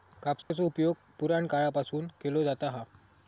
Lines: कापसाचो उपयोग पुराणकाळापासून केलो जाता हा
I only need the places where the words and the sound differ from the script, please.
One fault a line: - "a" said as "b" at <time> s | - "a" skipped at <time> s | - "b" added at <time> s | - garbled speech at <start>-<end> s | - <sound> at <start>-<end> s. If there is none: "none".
- dropout at 0.4-0.5 s